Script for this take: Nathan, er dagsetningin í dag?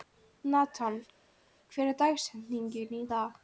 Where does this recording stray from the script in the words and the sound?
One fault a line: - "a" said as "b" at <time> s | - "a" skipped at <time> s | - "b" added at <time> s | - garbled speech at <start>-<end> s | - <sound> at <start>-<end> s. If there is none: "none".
- "hver" added at 1.7 s